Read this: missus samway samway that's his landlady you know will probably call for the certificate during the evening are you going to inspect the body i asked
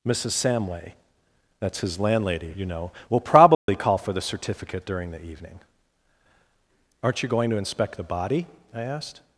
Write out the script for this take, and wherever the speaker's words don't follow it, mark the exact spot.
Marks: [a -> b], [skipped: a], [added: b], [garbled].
missus samway [skipped: samway] that's his landlady you know will probably call for the certificate during the evening [are -> aren't] you going to inspect the body i asked